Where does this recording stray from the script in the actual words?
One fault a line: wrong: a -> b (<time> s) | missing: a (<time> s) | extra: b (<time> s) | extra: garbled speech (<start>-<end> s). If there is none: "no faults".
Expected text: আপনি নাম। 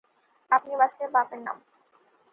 extra: বাঁচলে বাপের (0.8 s)